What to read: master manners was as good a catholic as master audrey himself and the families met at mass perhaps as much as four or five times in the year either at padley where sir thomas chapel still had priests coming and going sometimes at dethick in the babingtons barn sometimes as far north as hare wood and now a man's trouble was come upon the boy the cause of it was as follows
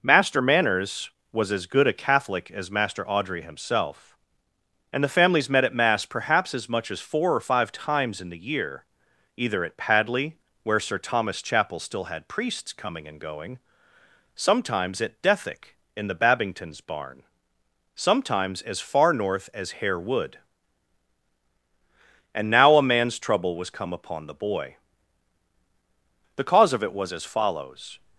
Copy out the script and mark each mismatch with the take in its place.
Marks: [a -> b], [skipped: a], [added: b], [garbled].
master manners was as good a catholic as master audrey himself and the families met at mass perhaps as much as four or five times in the year either at padley where sir thomas chapel still had priests coming and going sometimes at dethick in the babingtons barn sometimes as far north as hare wood and now a man's trouble was come upon the boy the cause of it was as follows